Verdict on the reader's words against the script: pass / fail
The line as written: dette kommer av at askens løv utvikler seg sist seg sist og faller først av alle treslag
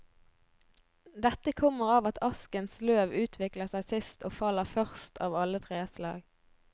fail